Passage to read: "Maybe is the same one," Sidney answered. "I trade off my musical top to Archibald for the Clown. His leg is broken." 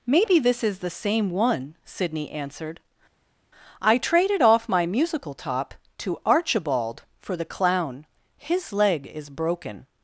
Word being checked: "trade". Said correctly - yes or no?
no